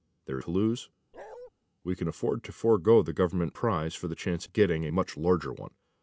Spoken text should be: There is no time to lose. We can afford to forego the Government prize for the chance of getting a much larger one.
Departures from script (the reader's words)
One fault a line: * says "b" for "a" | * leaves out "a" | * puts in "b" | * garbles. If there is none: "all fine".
* leaves out "is no time"